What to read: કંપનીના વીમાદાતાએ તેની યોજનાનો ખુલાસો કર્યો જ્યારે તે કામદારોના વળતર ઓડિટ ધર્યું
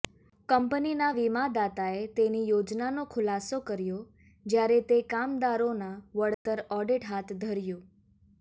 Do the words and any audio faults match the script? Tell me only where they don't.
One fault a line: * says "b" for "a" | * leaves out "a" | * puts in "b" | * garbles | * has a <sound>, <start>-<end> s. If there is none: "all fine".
* has a dropout, 6.3-6.5 s
* puts in "હાથ"